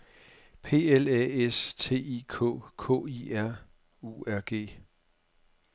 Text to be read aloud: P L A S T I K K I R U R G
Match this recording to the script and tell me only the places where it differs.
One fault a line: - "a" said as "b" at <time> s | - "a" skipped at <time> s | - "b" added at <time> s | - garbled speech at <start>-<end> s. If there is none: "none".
none